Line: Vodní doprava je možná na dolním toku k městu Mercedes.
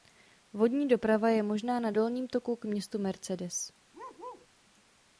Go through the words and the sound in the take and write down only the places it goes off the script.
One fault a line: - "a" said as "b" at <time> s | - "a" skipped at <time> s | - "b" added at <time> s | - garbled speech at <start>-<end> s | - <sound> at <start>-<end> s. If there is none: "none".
- bark at 3.9-4.5 s